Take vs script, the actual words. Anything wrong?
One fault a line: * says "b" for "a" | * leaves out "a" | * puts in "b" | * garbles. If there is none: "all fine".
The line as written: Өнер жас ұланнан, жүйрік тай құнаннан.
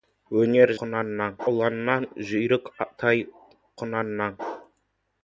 * says "құнаннан" for "жас"